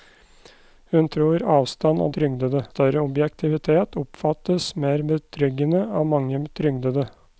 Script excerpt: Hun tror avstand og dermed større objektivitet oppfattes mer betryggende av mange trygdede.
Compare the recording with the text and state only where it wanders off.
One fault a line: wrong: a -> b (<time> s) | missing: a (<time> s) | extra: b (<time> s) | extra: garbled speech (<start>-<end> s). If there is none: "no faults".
wrong: dermed -> trygdede (2.2 s)